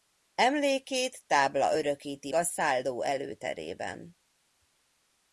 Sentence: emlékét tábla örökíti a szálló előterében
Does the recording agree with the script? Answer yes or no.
yes